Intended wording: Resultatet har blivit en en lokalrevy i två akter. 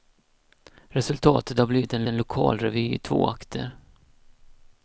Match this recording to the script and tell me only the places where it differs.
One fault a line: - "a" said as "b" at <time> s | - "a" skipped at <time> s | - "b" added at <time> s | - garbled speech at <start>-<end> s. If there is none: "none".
none